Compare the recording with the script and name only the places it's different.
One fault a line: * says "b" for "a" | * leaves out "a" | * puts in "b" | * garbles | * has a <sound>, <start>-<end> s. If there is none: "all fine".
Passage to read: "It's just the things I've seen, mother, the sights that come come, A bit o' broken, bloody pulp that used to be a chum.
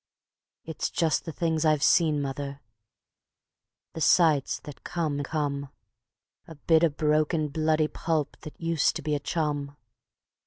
all fine